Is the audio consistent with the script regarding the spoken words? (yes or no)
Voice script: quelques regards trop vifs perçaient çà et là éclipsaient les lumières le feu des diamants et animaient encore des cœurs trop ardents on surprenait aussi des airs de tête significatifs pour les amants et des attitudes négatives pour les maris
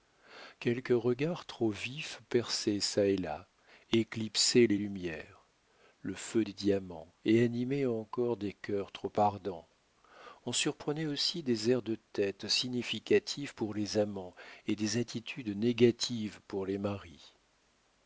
yes